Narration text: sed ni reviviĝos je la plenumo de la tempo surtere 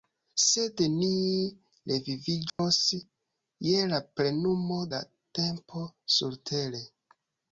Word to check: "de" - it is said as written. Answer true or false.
false